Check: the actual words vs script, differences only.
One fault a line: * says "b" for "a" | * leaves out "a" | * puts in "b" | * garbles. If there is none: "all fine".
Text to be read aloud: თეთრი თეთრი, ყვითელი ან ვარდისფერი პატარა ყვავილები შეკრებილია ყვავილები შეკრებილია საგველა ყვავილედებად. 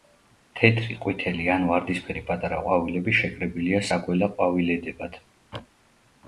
* leaves out "თეთრი"
* leaves out "ყვავილები შეკრებილია"